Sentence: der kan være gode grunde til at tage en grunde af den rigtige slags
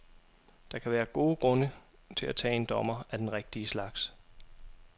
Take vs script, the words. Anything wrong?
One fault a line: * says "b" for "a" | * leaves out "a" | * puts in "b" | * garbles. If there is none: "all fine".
* says "dommer" for "grunde"